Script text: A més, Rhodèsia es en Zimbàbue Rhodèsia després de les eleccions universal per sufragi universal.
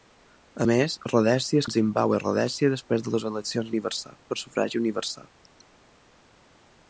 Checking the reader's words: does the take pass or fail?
pass